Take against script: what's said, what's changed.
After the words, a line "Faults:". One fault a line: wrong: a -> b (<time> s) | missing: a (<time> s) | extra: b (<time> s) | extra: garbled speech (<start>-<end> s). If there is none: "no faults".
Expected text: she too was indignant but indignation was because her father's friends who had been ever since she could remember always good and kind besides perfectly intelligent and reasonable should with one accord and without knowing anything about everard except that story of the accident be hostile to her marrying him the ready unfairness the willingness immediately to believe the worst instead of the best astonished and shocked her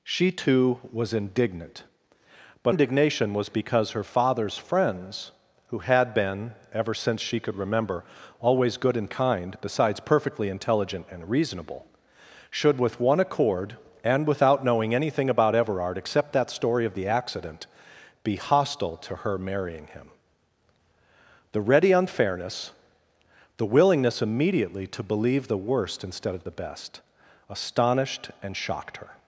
she too was indignant but indignation was because her father's friends who had been ever since she could remember always good and kind besides perfectly intelligent and reasonable should with one accord and without knowing anything about everard except that story of the accident be hostile to her marrying him the ready unfairness the willingness immediately to believe the worst instead of the best astonished and shocked her
Faults:
no faults